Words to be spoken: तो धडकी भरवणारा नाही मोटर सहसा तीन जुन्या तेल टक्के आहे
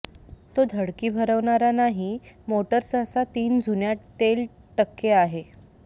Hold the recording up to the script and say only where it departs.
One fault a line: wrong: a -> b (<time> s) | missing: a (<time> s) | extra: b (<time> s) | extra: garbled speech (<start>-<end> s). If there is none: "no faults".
no faults